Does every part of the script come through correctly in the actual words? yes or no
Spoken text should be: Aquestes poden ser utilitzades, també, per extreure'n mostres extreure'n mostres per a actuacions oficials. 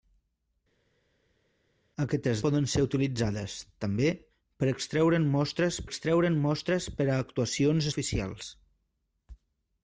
yes